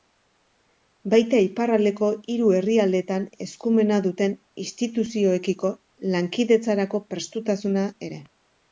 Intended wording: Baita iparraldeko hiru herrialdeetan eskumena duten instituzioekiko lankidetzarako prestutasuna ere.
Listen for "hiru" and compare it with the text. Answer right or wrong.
right